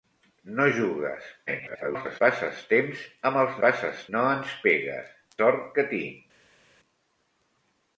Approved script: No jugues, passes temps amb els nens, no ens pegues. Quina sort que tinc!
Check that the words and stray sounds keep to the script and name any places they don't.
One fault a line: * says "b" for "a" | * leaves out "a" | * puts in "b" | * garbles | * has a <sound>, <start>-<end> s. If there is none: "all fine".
* garbles
* says "passes" for "nens"
* leaves out "Quina"